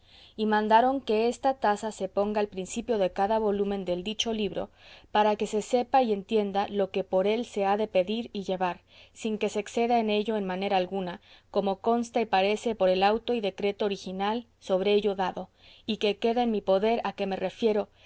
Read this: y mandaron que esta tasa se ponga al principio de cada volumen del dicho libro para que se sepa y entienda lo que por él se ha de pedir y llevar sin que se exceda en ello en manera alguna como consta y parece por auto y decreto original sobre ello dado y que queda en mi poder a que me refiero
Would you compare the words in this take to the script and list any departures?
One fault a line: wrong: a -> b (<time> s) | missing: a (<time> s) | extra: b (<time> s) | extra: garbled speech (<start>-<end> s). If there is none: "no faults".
extra: el (12.9 s)